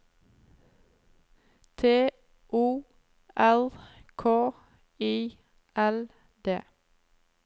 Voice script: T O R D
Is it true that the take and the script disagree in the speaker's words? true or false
true